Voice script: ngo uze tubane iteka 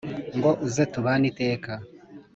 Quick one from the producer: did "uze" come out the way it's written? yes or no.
yes